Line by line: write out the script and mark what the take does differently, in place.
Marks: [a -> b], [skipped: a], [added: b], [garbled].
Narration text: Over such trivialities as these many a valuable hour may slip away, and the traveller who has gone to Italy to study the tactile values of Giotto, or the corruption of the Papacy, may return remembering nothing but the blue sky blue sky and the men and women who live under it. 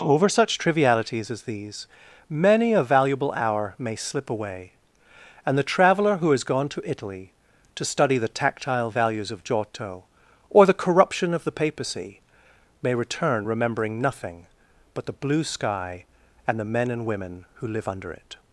Over such trivialities as these many a valuable hour may slip away, and the traveller who has gone to Italy to study the tactile values of Giotto, or the corruption of the Papacy, may return remembering nothing but the blue sky [skipped: blue sky] and the men and women who live under it.